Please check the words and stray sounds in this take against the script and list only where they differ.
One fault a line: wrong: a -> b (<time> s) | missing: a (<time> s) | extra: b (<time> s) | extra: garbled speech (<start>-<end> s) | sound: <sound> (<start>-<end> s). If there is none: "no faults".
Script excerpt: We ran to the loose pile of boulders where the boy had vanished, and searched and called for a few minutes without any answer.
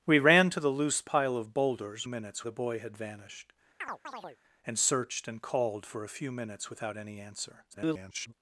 wrong: where -> minutes (2.1 s)
sound: chirp (3.8-4.4 s)
extra: garbled speech (7.7-8.3 s)